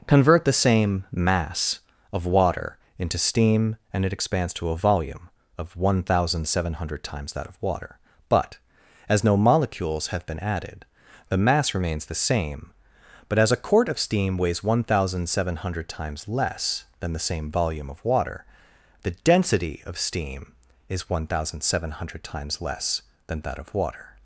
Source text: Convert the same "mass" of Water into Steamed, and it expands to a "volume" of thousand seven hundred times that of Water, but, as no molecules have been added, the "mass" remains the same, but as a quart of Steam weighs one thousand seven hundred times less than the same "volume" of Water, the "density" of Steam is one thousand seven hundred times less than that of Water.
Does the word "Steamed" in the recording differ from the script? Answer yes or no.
yes